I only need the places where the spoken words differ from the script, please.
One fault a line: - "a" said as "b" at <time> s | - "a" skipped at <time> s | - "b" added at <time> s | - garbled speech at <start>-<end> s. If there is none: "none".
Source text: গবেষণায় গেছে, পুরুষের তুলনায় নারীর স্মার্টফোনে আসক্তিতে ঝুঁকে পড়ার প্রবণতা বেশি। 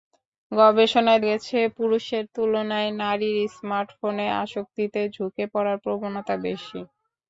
none